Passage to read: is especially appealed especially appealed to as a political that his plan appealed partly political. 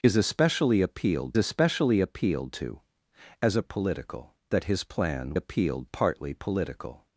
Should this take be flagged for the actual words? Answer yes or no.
no